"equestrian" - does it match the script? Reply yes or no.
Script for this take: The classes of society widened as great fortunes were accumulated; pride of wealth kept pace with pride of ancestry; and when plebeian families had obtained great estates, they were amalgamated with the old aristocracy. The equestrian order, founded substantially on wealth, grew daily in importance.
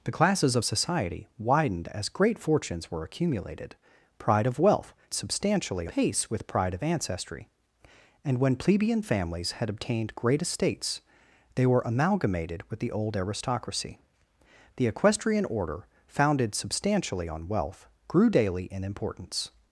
yes